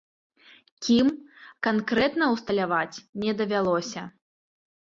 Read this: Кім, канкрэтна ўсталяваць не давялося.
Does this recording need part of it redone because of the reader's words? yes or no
no